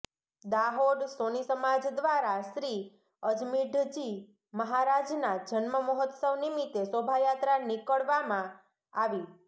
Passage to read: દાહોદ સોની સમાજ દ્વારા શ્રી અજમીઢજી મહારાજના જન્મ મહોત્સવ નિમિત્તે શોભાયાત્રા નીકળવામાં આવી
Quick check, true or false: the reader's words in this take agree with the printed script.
true